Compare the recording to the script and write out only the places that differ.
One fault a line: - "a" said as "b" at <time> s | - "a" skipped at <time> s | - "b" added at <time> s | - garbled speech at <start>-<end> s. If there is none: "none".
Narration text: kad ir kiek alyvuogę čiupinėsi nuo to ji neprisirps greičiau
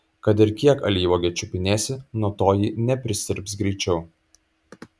none